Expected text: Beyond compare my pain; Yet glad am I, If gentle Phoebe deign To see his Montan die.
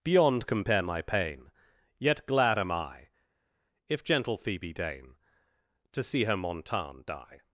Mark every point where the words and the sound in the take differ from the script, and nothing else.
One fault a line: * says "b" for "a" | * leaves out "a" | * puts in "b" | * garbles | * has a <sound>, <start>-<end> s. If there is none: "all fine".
* says "her" for "his"